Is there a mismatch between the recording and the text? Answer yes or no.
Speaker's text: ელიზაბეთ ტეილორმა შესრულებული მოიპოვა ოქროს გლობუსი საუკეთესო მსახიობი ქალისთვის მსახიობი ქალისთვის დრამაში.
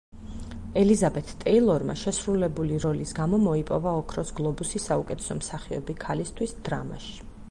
yes